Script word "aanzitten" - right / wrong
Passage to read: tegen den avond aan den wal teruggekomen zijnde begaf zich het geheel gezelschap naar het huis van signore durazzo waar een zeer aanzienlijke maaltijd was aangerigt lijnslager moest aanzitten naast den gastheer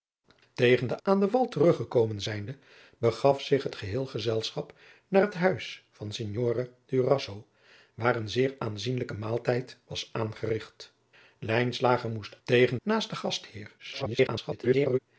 wrong